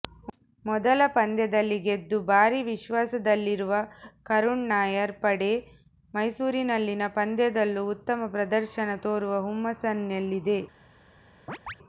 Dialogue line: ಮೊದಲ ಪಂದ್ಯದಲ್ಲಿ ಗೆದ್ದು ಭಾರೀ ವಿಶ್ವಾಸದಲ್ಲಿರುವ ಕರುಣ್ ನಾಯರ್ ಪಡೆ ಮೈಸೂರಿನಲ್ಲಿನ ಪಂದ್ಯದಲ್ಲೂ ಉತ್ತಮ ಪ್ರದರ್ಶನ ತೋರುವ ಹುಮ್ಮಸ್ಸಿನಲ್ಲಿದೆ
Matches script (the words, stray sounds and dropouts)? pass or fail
fail